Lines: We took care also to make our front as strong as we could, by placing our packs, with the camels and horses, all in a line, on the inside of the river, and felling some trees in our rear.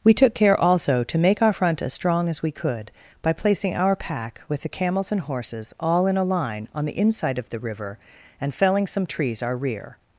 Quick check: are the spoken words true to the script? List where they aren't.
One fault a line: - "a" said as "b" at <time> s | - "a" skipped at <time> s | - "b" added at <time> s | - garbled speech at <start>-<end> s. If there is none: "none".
- "packs" said as "pack" at 4.0 s
- "in" skipped at 9.4 s